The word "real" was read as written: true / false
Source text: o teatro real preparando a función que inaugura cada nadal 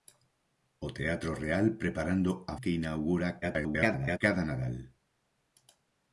true